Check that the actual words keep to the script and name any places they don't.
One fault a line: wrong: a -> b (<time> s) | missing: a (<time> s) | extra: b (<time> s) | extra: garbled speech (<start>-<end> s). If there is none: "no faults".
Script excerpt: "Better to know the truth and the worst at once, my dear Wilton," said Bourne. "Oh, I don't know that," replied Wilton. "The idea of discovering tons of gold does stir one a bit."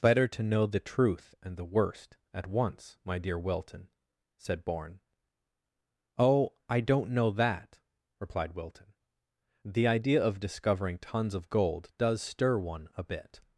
no faults